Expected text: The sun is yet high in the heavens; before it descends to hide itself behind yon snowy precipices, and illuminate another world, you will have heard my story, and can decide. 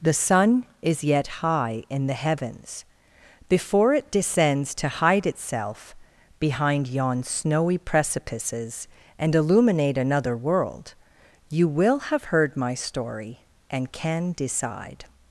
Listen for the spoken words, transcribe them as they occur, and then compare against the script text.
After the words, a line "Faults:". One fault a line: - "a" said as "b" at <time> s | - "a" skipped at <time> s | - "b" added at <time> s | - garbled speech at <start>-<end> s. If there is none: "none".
The sun is yet high in the heavens; before it descends to hide itself behind yon snowy precipices, and illuminate another world, you will have heard my story, and can decide.
Faults:
none